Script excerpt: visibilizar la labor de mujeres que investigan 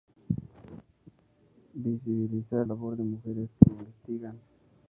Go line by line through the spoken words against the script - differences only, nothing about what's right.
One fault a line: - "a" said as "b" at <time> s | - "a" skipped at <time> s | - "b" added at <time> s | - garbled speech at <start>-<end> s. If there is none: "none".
- "la" skipped at 2.7 s